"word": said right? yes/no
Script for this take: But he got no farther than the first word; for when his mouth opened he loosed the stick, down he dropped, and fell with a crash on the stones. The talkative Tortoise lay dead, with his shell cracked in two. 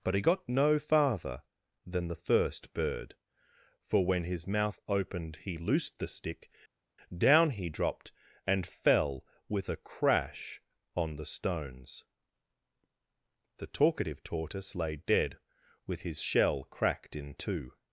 no